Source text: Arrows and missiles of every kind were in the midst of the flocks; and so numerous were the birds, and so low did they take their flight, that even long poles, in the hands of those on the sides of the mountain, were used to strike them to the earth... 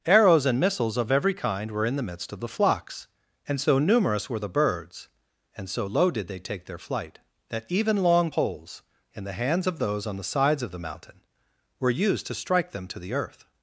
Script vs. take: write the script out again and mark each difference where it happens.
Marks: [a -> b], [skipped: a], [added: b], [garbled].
Arrows and missiles of every kind were in the midst of the flocks; and so numerous were the birds, and so low did they take their flight, that even long poles, in the hands of those on the sides of the mountain, were used to strike them to the earth...